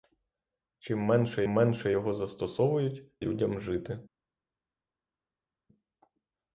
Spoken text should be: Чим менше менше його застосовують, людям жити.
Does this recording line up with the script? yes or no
yes